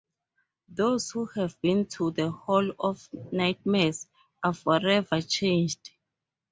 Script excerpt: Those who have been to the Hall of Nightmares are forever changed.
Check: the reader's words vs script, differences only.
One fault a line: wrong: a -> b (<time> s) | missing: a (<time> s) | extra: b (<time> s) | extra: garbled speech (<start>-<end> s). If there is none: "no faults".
no faults